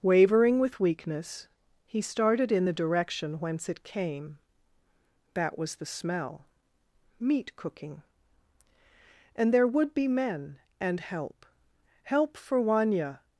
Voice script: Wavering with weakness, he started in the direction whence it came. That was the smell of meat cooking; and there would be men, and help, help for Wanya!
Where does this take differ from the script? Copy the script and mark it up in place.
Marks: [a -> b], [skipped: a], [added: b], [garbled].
Wavering with weakness, he started in the direction whence it came. That was the smell [skipped: of] meat cooking; and there would be men, and help, help for Wanya!